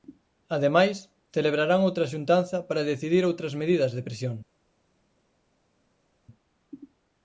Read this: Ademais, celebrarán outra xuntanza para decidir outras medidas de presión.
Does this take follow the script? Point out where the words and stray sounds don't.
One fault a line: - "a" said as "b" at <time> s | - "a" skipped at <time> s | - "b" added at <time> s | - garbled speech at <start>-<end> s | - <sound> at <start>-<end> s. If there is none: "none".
none